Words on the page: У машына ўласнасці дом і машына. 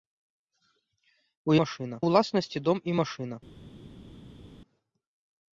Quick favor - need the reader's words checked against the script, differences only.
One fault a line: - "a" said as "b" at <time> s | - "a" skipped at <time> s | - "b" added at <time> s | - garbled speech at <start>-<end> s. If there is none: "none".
none